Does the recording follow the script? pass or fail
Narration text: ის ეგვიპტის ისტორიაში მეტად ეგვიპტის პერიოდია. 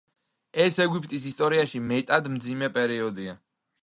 fail